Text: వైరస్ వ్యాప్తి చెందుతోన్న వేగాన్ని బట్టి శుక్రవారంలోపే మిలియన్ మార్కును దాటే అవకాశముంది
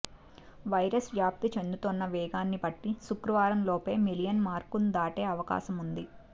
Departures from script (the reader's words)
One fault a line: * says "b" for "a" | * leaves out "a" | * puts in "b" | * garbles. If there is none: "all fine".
all fine